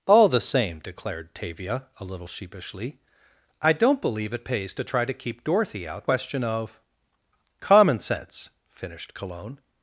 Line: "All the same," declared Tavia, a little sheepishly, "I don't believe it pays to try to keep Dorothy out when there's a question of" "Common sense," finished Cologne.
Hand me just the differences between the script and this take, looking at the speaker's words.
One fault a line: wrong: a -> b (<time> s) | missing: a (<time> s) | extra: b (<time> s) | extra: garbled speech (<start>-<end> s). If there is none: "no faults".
missing: when there's a (6.0 s)